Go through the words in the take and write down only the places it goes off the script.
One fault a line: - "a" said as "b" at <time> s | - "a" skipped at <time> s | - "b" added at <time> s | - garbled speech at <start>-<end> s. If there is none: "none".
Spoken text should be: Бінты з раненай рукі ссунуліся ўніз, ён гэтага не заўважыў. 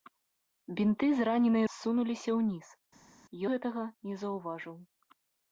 - "рукі" skipped at 1.6 s
- "ён" skipped at 2.7 s